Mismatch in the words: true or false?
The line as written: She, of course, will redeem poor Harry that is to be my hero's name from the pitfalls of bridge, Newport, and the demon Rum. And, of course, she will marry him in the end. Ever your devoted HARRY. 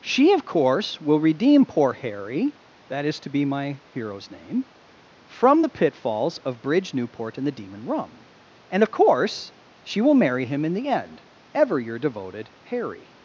false